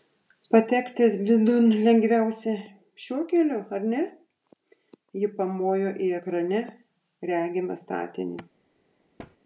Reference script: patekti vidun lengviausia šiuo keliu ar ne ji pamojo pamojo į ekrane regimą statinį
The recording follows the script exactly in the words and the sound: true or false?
false